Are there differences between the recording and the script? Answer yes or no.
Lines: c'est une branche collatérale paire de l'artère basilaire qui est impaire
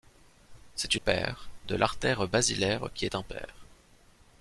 yes